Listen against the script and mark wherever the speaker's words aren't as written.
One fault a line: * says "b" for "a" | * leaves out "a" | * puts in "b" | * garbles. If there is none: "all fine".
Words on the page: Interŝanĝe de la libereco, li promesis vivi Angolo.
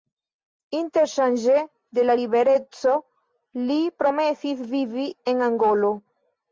* puts in "en"